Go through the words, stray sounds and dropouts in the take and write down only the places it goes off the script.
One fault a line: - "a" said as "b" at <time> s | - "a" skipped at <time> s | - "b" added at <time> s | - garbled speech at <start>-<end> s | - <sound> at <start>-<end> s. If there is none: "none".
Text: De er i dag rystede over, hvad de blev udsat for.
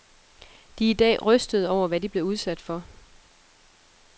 none